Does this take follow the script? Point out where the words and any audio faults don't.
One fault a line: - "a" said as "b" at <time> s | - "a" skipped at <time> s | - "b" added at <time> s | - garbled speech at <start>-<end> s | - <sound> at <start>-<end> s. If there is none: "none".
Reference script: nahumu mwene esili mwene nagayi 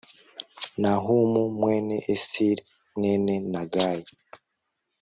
none